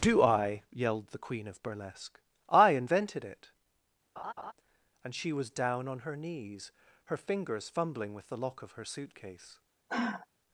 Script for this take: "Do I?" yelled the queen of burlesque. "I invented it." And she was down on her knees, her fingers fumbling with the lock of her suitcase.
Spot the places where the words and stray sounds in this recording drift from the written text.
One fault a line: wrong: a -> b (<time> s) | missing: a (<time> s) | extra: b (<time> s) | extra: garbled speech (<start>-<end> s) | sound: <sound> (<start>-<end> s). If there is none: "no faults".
sound: laugh (4.2-4.5 s)
sound: sigh (9.9-10.3 s)